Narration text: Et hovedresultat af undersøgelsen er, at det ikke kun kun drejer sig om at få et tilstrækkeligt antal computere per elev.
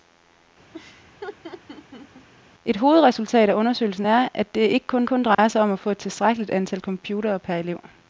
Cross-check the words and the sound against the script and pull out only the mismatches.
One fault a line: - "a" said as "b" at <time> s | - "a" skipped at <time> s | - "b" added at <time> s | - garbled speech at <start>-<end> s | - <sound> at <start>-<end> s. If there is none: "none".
- laugh at 0.7-2.3 s
- dropout at 5.3-5.4 s